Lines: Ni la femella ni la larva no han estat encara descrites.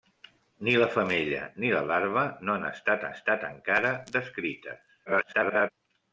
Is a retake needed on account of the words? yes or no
yes